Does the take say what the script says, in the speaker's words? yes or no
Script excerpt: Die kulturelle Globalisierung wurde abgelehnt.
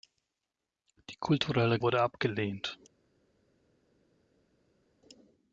no